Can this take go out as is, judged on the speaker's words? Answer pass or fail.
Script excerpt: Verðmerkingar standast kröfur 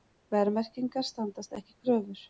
fail